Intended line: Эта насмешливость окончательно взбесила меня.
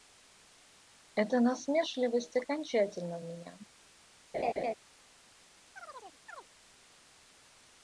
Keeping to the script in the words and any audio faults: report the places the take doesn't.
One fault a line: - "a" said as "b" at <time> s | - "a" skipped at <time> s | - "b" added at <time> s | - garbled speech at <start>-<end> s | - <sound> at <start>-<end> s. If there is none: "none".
- "взбесила" skipped at 3.2 s
- laugh at 4.3-4.7 s
- chirp at 5.7-6.5 s